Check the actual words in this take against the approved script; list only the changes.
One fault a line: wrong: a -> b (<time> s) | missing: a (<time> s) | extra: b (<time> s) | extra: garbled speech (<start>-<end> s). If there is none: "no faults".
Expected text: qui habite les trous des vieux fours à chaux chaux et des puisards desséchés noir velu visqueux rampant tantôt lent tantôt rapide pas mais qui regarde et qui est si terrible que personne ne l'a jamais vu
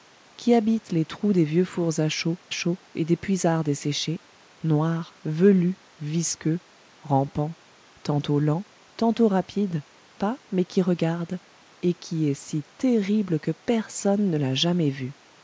no faults